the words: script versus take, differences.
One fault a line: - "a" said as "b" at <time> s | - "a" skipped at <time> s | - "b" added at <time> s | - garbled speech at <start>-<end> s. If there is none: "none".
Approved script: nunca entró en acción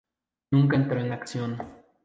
none